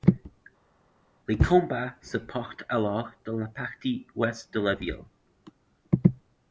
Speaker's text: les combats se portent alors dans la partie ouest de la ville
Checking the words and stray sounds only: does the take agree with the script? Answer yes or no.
yes